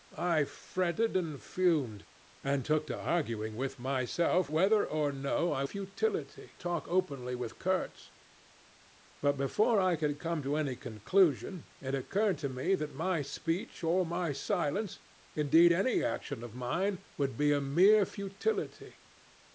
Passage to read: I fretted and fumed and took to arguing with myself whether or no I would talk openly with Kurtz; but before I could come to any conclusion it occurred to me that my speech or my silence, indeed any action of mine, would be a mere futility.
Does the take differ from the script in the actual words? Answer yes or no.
yes